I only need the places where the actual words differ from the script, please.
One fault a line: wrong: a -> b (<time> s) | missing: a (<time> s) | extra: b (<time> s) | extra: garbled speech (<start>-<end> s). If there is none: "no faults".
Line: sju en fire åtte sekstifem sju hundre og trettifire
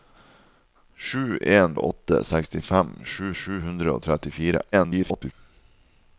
missing: fire (1.8 s)
extra: sju (3.4 s)
extra: garbled speech (4.7-5.3 s)